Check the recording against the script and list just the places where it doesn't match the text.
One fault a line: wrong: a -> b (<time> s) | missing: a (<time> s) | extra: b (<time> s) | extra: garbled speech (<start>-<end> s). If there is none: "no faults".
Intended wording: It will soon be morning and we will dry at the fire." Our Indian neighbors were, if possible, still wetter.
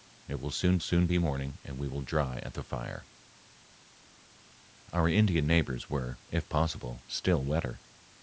extra: soon (0.8 s)